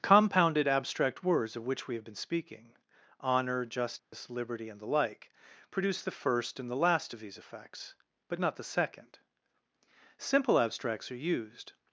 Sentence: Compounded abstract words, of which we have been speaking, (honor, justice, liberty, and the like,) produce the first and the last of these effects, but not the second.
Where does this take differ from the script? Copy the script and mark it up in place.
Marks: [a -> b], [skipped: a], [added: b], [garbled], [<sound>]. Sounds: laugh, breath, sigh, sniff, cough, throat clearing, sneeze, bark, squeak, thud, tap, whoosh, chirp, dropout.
Compounded abstract words, of which we have been speaking, (honor, justice, [dropout] liberty, and the like,) produce the first and the last of these effects, but not the second. [added: Simple abstracts are used]